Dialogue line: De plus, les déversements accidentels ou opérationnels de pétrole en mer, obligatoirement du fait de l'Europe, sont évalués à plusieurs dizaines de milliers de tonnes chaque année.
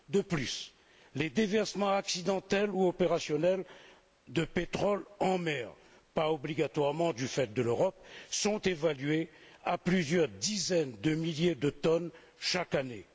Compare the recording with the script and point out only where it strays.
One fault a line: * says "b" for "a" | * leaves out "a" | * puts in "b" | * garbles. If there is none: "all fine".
* puts in "pas"